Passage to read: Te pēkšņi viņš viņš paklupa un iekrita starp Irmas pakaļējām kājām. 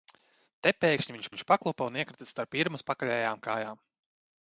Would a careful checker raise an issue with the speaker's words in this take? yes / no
no